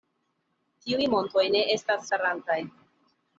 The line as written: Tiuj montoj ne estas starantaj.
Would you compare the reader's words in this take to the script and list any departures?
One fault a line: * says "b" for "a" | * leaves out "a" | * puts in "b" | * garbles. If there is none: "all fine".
all fine